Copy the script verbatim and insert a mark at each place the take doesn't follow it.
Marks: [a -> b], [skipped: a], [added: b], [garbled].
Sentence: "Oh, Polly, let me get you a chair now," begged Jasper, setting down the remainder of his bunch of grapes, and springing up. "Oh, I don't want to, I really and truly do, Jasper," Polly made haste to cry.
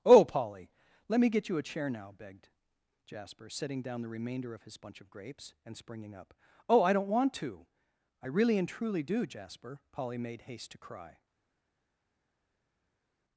"Oh, Polly, let me get you a chair now," begged Jasper, setting down the remainder of his bunch of grapes, and springing up. "Oh, I don't want to, I really and truly do, Jasper," Polly made haste to cry.